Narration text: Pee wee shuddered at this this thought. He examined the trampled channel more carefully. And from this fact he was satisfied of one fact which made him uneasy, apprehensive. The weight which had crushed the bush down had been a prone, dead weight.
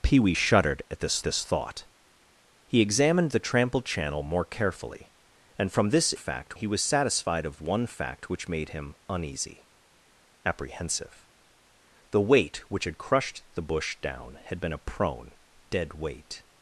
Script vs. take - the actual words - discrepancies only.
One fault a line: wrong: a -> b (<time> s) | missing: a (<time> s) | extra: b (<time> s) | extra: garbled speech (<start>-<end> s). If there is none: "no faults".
no faults